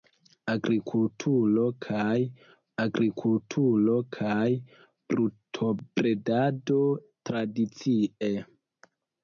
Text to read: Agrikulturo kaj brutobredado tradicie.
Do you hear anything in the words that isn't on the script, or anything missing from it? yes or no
yes